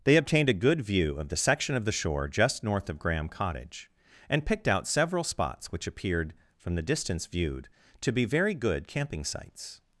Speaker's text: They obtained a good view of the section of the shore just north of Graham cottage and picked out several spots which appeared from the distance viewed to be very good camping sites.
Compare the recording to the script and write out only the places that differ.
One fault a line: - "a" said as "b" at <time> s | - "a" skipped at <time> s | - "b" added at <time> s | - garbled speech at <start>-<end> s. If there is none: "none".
none